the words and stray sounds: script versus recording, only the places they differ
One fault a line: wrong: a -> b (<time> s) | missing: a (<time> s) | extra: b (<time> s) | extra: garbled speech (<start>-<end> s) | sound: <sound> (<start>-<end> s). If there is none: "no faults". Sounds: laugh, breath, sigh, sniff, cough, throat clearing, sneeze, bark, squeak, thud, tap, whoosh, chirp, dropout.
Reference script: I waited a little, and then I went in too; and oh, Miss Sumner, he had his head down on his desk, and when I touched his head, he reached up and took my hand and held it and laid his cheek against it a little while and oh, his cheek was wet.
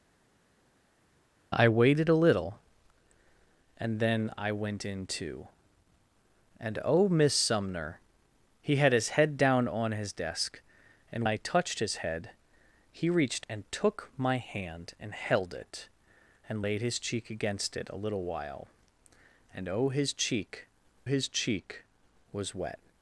missing: when (11.3 s)
missing: up (13.5 s)
extra: his cheek (21.0 s)